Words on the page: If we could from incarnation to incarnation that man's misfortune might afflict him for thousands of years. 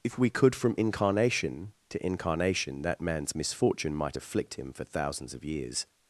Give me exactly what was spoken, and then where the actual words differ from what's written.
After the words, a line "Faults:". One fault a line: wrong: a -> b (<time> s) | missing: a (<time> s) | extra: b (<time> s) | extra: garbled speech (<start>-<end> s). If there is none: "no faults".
If we could from incarnation to incarnation that man's misfortune might afflict him for thousands of years.
Faults:
no faults